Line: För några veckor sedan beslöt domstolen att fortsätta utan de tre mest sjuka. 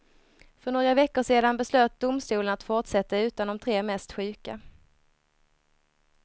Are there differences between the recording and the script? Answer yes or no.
no